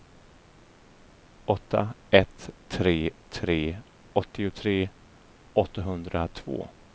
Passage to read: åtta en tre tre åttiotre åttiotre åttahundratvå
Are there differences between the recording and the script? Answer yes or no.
yes